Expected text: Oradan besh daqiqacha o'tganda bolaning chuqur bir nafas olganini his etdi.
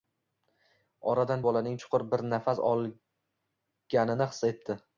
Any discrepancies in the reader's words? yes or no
yes